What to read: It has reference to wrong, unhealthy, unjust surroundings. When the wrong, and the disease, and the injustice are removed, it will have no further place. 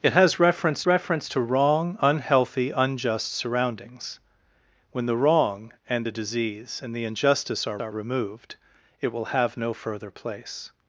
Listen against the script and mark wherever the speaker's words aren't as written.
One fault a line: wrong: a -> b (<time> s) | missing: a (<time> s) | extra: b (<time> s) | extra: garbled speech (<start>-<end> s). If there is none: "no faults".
extra: reference (0.9 s)
extra: are (7.8 s)